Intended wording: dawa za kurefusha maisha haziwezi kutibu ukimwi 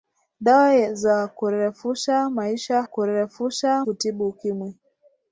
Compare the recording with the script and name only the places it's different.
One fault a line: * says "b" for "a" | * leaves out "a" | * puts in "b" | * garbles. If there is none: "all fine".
* says "kurefusha" for "haziwezi"